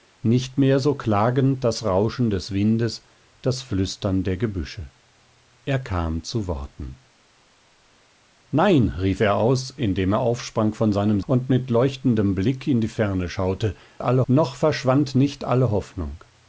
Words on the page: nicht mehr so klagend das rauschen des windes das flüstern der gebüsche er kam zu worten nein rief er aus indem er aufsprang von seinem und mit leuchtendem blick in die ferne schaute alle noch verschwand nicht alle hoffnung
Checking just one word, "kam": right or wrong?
right